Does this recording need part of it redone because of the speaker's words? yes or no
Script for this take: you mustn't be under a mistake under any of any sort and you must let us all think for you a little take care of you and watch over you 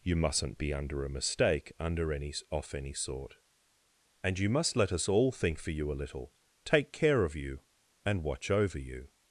yes